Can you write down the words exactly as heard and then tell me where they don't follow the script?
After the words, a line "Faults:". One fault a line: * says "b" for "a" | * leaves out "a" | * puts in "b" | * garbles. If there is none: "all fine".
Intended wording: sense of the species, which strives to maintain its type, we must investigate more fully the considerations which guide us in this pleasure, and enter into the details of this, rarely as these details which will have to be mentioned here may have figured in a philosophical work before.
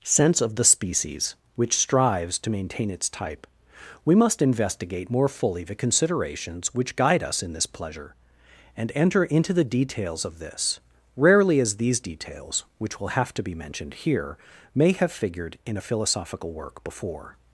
sense of the species, which strives to maintain its type, we must investigate more fully the considerations which guide us in this pleasure, and enter into the details of this, rarely as these details which will have to be mentioned here may have figured in a philosophical work before.
Faults:
all fine